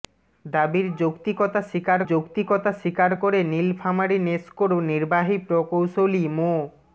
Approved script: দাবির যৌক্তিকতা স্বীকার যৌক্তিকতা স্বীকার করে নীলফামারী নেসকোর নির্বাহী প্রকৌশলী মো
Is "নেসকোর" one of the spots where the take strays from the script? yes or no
no